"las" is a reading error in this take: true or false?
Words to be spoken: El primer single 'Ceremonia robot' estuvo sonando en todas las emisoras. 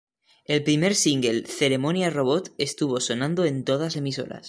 true